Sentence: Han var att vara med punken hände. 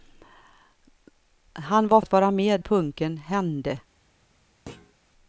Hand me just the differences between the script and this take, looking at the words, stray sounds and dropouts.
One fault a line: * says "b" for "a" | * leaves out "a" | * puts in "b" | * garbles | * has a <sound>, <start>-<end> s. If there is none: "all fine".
* has a thud, 4.7-4.9 s